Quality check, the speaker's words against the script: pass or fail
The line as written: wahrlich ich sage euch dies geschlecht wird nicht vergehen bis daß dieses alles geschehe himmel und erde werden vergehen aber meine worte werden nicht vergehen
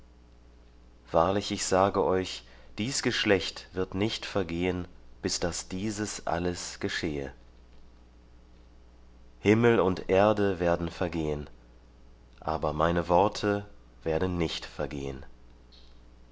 pass